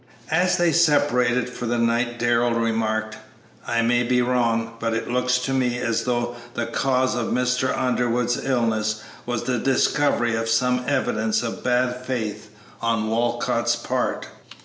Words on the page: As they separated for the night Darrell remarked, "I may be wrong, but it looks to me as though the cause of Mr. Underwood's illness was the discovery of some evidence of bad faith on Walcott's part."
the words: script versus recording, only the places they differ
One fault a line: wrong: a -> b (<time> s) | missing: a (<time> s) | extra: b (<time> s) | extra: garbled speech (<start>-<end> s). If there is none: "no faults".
no faults